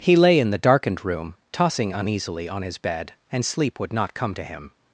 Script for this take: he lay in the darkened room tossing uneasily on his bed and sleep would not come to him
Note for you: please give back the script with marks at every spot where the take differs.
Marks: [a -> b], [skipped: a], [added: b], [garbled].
he lay in the darkened room tossing uneasily on his bed and sleep would not come to him